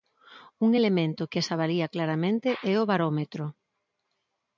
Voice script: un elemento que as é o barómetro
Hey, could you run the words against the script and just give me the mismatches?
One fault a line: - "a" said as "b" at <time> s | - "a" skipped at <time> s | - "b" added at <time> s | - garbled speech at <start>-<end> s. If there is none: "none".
- "avalía claramente" added at 1.5 s